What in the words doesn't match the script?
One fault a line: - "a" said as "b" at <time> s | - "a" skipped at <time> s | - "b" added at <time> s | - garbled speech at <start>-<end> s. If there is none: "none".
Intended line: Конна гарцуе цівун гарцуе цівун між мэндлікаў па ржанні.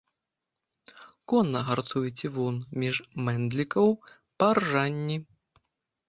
- "гарцуе цівун" skipped at 2.6 s